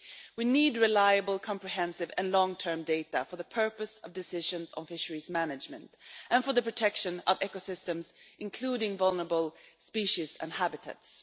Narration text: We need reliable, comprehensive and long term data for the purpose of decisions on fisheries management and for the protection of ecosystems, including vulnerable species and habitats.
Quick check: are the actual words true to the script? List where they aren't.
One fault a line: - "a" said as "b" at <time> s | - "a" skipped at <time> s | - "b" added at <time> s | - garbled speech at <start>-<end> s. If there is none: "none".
none